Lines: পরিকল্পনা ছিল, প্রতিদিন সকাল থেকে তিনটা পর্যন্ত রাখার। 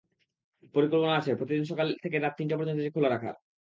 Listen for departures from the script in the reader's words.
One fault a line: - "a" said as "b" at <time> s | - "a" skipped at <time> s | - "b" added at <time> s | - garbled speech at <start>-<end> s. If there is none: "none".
- "ছিল" said as "আছে" at 1.2 s
- "রাত" added at 2.2 s
- "এটি খোলা" added at 2.8 s